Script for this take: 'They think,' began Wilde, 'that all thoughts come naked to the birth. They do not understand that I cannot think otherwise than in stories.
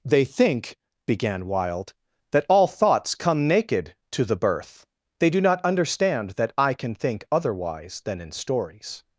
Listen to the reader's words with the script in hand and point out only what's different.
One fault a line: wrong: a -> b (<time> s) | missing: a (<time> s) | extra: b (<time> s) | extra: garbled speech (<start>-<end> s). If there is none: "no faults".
wrong: cannot -> can (6.7 s)